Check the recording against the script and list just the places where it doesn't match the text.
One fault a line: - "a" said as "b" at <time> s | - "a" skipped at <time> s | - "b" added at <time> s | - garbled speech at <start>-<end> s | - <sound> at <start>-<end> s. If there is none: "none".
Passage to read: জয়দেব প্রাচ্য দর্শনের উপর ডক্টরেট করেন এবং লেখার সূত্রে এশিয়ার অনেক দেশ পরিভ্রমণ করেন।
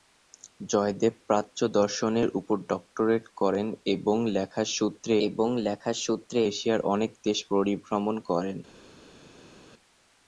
- "এবং লেখার সূত্রে" added at 5.3 s